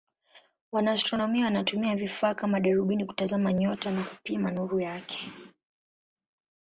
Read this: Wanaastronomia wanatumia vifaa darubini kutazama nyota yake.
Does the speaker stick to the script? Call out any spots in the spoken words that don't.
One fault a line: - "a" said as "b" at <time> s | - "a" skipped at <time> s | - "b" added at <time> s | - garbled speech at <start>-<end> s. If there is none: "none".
- "kama" added at 2.3 s
- "na kupima nuru" added at 3.9 s